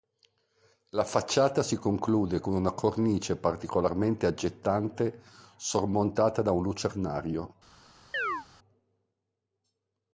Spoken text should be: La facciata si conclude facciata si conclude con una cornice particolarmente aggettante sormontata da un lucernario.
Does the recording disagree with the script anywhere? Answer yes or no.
yes